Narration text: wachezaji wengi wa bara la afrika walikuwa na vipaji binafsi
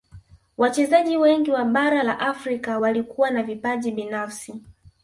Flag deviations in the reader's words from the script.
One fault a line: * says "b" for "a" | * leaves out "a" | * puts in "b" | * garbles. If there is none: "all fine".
all fine